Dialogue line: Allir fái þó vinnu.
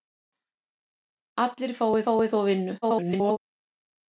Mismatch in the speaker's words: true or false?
true